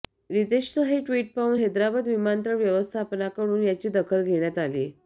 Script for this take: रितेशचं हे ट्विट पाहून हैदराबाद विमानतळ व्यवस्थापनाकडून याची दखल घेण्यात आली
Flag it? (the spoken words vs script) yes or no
no